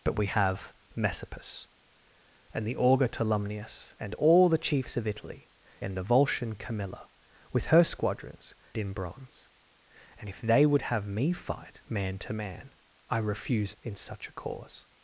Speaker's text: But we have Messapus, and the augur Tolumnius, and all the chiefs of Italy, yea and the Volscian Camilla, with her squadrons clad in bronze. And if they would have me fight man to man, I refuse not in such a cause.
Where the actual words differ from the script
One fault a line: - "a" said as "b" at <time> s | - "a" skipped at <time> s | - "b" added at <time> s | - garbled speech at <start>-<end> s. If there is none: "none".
- "yea" skipped at 5.5 s
- "clad" skipped at 8.5 s
- "not" skipped at 13.8 s